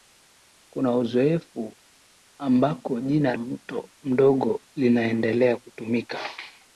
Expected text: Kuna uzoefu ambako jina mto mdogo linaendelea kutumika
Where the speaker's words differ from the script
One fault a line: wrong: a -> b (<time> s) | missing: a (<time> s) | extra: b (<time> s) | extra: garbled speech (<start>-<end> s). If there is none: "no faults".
no faults